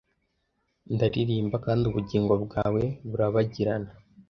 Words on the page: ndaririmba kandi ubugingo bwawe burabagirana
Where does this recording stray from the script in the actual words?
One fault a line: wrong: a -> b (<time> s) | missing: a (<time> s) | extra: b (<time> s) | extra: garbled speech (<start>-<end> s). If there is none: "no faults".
no faults